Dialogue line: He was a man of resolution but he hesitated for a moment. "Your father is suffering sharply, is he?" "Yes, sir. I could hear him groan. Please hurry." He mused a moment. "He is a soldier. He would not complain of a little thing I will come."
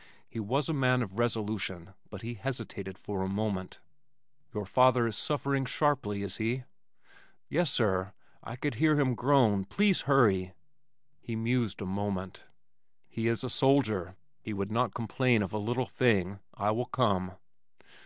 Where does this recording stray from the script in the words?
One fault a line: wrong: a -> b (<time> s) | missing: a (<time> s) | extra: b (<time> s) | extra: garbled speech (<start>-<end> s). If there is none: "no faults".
no faults